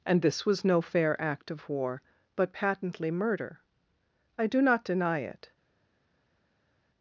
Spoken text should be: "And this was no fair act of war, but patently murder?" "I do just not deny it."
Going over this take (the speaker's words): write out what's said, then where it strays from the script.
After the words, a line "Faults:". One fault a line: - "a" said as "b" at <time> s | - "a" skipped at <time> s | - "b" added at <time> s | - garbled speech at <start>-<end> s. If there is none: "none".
"And this was no fair act of war, but patently murder?" "I do not deny it."
Faults:
- "just" skipped at 4.6 s